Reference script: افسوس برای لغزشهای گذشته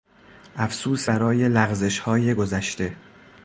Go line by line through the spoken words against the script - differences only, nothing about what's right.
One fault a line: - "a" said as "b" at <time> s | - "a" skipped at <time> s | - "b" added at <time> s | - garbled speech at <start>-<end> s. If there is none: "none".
none